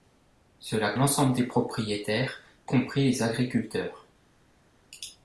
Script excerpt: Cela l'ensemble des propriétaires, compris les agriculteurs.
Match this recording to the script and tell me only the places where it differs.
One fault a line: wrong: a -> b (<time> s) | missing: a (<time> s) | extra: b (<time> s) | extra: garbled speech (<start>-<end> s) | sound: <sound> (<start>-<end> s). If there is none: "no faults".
no faults